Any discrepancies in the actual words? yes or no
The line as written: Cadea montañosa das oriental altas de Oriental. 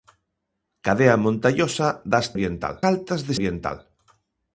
no